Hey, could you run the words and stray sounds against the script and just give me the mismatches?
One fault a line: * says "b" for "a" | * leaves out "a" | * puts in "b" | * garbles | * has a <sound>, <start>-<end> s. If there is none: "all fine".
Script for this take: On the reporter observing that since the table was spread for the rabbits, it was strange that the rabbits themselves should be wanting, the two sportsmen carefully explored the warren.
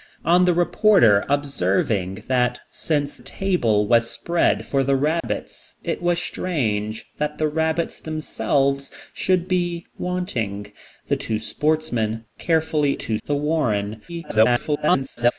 * leaves out "the"
* has a dropout, 5.2-5.2 s
* says "two" for "explored"
* garbles